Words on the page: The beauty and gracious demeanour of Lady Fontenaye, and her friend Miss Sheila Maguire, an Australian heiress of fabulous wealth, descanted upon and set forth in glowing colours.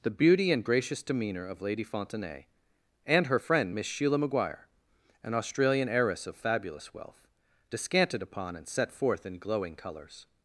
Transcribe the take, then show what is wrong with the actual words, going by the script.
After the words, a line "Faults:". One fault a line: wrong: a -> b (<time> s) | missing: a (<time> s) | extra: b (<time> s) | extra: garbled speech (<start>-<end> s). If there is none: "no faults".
The beauty and gracious demeanour of Lady Fontenaye, and her friend Miss Sheila Maguire, an Australian heiress of fabulous wealth, descanted upon and set forth in glowing colours.
Faults:
no faults